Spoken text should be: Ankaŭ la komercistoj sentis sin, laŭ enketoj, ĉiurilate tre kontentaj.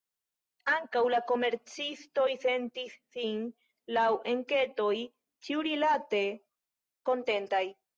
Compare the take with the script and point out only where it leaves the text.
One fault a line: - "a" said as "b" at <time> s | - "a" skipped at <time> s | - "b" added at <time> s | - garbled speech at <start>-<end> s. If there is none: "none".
- "tre" skipped at 6.2 s